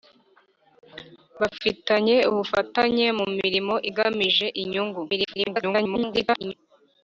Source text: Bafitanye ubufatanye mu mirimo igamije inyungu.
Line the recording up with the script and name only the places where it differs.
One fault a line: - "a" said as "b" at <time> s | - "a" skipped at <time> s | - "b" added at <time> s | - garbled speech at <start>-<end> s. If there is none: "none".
- garbled speech at 5.1-6.5 s